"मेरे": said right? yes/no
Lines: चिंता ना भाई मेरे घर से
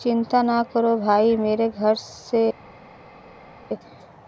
yes